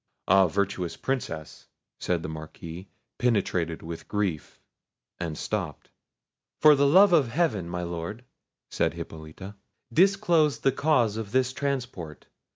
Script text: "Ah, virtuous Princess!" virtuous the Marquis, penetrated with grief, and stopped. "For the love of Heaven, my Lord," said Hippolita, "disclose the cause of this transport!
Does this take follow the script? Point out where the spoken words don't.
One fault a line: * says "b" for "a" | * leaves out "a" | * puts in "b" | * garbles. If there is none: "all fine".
* says "said" for "virtuous"